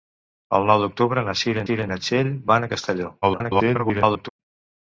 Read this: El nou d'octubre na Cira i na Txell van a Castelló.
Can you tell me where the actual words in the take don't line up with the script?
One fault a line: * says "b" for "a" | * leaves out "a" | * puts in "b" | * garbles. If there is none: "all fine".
* puts in "Cira"
* garbles